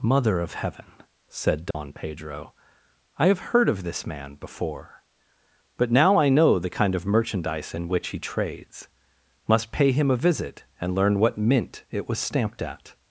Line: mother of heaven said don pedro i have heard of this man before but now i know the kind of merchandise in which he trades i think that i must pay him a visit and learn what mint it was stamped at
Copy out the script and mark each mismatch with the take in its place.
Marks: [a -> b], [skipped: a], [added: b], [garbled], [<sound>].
mother of heaven said don [dropout] pedro i have heard of this man before but now i know the kind of merchandise in which he trades [skipped: i think that i] must pay him a visit and learn what mint it was stamped at